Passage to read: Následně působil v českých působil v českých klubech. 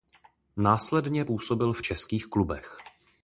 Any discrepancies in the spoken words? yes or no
yes